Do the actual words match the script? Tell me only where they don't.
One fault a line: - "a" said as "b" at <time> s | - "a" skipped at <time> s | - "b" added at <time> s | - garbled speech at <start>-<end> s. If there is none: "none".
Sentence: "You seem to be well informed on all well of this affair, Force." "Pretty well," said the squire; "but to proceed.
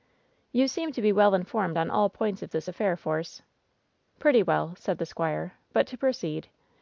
- "well" said as "points" at 2.1 s